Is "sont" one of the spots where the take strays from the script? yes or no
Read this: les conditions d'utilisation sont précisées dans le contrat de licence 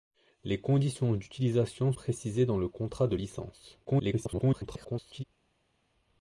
yes